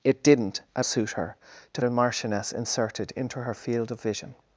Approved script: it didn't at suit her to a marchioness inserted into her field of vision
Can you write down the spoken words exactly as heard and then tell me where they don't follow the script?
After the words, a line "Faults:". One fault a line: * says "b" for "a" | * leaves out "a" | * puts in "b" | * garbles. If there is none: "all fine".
it didn't at suit her to a marchioness inserted into her field of vision
Faults:
all fine